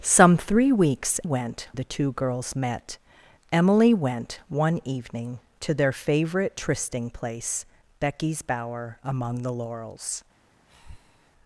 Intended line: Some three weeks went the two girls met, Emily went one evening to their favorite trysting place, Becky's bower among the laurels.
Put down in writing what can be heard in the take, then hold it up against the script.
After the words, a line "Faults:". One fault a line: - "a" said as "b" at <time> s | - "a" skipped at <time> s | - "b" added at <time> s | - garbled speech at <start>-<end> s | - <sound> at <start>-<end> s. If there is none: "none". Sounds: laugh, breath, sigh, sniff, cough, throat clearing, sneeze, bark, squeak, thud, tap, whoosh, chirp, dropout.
Some three weeks went the two girls met, Emily went one evening to their favorite trysting place, Becky's bower among the laurels.
Faults:
- breath at 10.7-11.3 s